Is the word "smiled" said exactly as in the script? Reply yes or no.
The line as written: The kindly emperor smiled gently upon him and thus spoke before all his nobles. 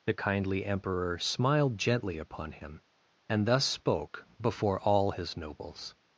yes